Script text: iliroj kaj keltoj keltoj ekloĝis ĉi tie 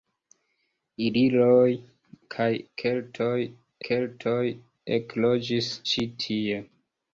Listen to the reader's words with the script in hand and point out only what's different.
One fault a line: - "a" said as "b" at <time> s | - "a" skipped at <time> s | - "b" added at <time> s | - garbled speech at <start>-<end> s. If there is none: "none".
none